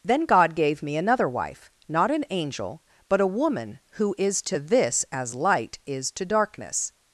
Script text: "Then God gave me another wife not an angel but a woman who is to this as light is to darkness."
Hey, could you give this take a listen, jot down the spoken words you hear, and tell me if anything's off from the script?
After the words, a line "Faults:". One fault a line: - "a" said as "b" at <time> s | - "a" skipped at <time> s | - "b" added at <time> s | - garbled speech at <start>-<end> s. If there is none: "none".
"Then God gave me another wife not an angel but a woman who is to this as light is to darkness."
Faults:
none